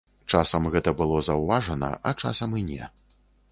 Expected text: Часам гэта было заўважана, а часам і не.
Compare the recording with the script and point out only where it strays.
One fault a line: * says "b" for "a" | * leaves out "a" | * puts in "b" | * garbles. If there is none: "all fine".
all fine